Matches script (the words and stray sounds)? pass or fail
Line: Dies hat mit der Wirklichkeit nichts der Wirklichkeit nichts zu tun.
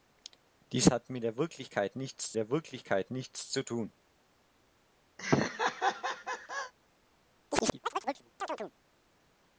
fail